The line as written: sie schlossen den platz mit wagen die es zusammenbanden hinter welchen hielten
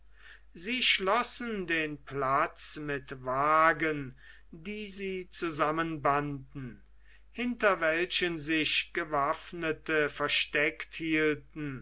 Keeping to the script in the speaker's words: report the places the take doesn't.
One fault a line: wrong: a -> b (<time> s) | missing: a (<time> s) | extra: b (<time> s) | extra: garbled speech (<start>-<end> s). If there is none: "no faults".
wrong: es -> sie (4.9 s)
extra: sich gewaffnete versteckt (8.4 s)